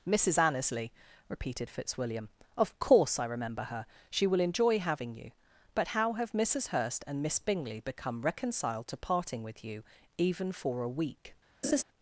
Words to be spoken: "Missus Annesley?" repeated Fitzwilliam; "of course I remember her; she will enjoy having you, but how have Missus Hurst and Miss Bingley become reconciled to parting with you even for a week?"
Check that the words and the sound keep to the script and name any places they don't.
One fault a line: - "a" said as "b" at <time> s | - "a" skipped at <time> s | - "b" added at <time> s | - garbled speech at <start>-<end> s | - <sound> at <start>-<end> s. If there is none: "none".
- laugh at 11.6-11.8 s